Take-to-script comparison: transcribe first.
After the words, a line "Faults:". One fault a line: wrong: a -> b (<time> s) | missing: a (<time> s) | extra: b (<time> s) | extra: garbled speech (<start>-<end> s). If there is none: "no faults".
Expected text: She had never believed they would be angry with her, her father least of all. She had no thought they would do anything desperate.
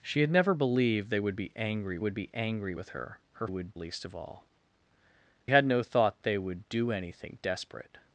She had never believed they would be angry would be angry with her, her would least of all. Had no thought they would do anything desperate.
Faults:
extra: would be angry (2.0 s)
wrong: father -> would (3.4 s)
missing: She (4.5 s)